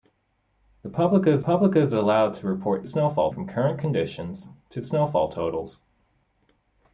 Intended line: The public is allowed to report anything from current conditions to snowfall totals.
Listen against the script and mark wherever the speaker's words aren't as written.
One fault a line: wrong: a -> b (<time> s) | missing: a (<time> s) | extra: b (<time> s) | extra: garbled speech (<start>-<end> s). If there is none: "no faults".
extra: public is (1.4 s)
wrong: anything -> snowfall (2.8 s)